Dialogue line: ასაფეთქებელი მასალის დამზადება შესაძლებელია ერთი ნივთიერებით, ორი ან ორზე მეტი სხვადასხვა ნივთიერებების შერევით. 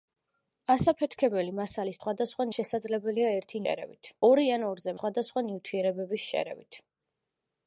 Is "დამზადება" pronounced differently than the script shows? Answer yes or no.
yes